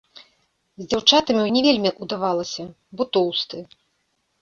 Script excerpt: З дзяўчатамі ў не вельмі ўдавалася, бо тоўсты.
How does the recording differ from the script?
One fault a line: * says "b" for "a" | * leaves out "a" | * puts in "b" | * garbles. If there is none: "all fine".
all fine